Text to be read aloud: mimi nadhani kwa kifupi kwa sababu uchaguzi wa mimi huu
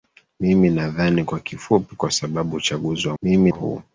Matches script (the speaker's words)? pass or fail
pass